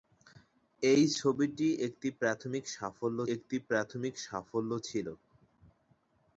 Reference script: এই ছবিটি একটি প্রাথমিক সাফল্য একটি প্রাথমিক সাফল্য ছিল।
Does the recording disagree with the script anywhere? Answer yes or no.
no